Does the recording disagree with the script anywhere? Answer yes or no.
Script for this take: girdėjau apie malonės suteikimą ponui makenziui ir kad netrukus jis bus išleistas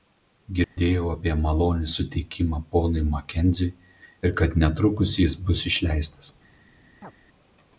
no